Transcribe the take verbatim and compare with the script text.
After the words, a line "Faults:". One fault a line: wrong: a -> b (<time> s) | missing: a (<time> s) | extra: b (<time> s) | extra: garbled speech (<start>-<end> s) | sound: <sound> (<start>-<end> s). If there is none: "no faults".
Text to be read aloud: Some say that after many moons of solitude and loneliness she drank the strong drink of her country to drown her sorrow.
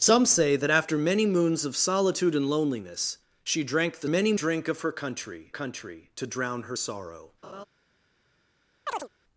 Some say that after many moons of solitude and loneliness she drank the many drink of her country country to drown her sorrow.
Faults:
wrong: strong -> many (4.0 s)
extra: country (5.5 s)
sound: laugh (7.4-7.6 s)
sound: chirp (8.9-9.1 s)